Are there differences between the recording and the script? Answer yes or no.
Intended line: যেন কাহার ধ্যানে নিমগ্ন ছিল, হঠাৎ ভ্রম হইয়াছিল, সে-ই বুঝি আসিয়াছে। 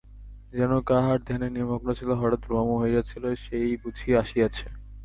no